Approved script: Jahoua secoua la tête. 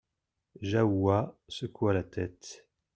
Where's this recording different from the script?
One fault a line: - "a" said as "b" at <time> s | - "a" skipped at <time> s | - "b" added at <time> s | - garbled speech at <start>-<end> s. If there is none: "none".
none